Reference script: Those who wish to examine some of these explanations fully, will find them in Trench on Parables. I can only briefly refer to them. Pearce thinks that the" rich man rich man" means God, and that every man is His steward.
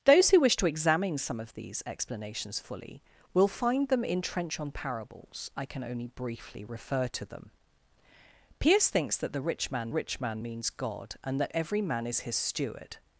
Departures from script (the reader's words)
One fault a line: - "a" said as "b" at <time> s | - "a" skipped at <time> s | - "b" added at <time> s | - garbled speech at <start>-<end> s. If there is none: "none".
none